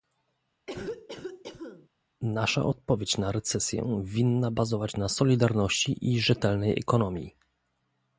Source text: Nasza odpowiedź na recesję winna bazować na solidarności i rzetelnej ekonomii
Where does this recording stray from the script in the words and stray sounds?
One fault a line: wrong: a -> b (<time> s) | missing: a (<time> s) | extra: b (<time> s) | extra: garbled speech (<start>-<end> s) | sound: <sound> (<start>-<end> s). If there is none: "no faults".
sound: cough (0.7-1.9 s)